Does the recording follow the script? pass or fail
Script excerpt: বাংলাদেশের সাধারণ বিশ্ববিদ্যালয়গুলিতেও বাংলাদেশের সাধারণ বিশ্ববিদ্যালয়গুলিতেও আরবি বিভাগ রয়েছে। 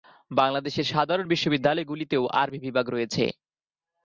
fail